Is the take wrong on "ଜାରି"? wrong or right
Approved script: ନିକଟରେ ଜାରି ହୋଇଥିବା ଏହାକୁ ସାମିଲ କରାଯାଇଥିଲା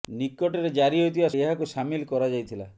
right